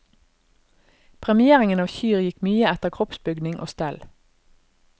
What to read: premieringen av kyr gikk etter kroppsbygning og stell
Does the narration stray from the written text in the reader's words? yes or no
yes